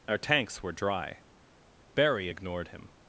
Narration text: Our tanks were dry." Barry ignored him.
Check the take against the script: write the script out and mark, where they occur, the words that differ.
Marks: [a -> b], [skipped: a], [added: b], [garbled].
Our tanks were dry." Barry ignored him.